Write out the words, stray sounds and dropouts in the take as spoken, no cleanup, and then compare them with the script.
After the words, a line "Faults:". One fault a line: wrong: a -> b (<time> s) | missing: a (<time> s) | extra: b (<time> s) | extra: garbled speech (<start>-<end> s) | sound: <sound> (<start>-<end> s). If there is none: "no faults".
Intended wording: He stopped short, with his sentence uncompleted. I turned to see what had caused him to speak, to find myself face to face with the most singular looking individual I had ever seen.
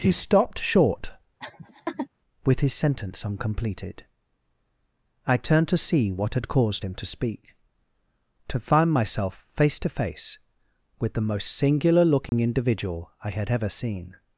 He stopped short, with his sentence uncompleted. I turned to see what had caused him to speak, to find myself face to face with the most singular looking individual I had ever seen.
Faults:
sound: laugh (1.4-2.1 s)
sound: dropout (12.3-12.3 s)